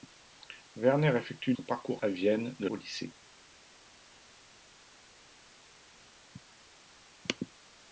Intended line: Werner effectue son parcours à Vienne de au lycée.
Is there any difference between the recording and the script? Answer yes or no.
no